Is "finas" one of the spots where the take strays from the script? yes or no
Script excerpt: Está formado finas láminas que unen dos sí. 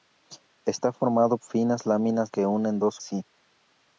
no